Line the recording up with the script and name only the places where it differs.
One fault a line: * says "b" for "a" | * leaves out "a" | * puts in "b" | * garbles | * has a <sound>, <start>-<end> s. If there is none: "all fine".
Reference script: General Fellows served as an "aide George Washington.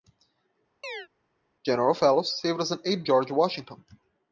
* has a chirp, 0.8-1.1 s